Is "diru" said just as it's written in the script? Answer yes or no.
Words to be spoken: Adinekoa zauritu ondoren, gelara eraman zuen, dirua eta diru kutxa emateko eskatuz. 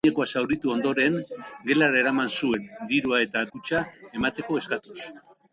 no